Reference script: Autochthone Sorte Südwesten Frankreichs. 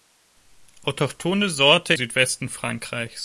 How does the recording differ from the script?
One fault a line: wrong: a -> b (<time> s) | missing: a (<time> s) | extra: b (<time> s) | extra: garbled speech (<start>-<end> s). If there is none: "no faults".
no faults